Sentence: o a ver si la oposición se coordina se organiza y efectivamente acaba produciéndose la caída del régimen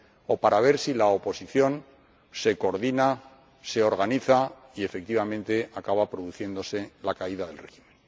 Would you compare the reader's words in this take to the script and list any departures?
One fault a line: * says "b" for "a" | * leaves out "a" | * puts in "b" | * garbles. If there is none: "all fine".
* says "para" for "a"